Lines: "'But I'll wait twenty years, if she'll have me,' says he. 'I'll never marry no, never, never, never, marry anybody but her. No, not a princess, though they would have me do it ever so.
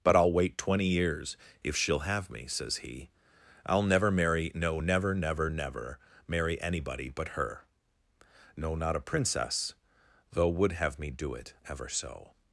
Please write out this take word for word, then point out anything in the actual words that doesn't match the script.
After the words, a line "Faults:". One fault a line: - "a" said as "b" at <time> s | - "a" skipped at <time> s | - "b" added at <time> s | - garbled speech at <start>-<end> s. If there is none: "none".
"'But I'll wait twenty years, if she'll have me,' says he. 'I'll never marry no, never, never, never, marry anybody but her. No, not a princess, though would have me do it ever so.
Faults:
- "they" skipped at 10.5 s